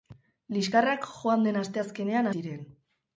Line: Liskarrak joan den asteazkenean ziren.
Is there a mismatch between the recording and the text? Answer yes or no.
no